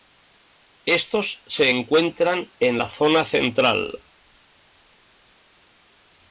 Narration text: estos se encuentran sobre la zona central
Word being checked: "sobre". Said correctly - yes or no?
no